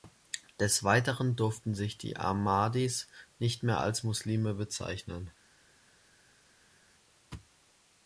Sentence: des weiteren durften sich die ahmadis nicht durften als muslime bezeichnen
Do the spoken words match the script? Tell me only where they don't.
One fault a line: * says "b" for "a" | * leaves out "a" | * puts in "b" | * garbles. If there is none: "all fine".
* says "mehr" for "durften"